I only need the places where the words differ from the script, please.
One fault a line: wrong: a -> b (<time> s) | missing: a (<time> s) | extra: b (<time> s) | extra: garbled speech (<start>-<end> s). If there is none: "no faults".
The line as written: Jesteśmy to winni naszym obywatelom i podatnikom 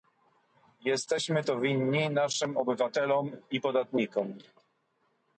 no faults